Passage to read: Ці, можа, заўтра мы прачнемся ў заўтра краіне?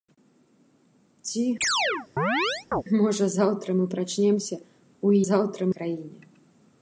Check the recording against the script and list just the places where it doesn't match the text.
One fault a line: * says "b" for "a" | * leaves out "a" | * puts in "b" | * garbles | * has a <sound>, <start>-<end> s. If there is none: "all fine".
* has a chirp, 1.6-2.8 s